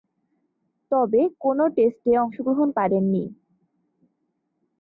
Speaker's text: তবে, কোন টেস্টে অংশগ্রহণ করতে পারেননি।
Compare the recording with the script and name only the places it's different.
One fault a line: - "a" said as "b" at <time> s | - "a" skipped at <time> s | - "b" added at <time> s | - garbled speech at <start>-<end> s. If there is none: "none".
- "করতে" skipped at 2.7 s